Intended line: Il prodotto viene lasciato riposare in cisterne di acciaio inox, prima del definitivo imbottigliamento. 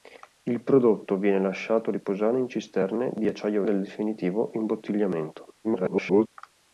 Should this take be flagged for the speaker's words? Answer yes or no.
yes